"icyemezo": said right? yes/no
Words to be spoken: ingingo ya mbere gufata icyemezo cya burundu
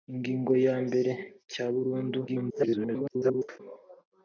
no